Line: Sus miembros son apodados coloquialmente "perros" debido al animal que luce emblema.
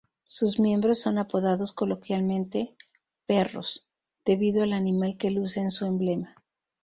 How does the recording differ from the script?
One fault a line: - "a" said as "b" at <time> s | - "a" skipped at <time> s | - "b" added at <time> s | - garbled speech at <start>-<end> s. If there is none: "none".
- "en su" added at 5.6 s